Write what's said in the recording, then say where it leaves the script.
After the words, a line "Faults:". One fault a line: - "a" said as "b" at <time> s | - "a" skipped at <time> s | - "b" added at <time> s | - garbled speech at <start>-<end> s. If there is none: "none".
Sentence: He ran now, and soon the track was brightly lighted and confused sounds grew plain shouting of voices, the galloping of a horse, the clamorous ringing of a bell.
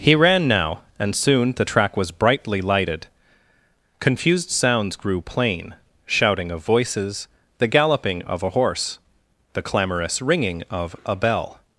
He ran now, and soon the track was brightly lighted confused sounds grew plain shouting of voices, the galloping of a horse, the clamorous ringing of a bell.
Faults:
- "and" skipped at 3.1 s